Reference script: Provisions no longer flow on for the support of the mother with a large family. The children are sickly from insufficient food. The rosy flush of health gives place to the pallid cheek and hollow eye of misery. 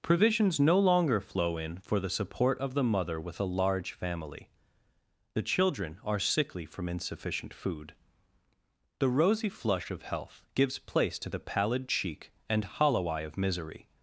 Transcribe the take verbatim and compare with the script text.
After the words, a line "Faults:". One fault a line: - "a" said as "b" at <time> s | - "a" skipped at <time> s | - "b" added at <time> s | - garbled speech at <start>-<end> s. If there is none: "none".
Provisions no longer flow in for the support of the mother with a large family. The children are sickly from insufficient food. The rosy flush of health gives place to the pallid cheek and hollow eye of misery.
Faults:
- "on" said as "in" at 1.6 s